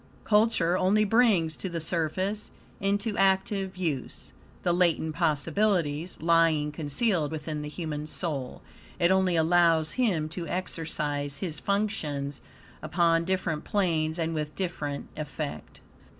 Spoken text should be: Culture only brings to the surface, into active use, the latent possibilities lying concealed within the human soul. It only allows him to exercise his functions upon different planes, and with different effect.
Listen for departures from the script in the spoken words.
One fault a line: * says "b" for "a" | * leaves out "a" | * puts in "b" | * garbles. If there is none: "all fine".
all fine